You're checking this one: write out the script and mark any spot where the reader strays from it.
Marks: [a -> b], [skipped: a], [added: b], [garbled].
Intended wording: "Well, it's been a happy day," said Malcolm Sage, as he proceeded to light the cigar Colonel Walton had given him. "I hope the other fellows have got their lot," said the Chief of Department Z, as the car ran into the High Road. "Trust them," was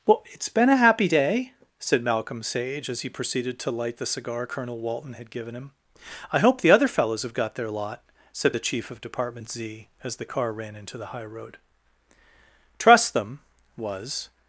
"Well, it's been a happy day," said Malcolm Sage, as he proceeded to light the cigar Colonel Walton had given him. "I hope the other fellows have got their lot," said the Chief of Department Z, as the car ran into the High Road. "Trust them," was